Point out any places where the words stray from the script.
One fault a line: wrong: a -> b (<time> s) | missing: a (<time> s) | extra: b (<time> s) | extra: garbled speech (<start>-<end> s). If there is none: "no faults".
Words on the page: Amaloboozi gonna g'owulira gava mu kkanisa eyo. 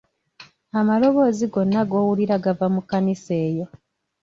no faults